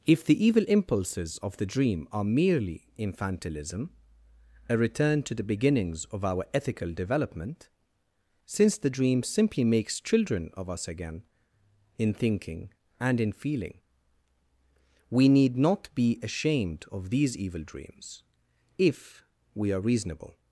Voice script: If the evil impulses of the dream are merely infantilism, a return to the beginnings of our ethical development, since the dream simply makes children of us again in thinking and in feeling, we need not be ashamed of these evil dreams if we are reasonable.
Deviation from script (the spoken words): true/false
false